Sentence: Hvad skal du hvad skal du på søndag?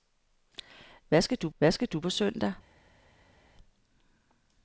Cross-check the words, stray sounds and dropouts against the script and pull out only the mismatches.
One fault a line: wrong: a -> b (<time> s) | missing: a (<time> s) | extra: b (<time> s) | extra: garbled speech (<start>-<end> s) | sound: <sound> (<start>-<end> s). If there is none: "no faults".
no faults